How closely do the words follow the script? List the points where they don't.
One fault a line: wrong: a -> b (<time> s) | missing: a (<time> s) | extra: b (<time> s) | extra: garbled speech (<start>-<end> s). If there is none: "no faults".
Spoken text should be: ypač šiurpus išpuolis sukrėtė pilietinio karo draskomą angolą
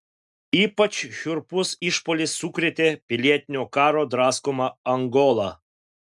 no faults